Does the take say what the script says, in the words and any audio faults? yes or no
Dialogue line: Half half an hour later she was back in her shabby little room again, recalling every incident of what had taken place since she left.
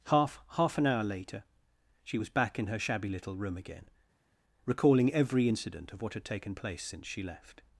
yes